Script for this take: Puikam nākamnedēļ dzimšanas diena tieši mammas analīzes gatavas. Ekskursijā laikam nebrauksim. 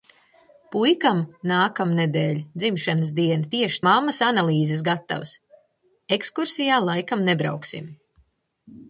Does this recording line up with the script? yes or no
yes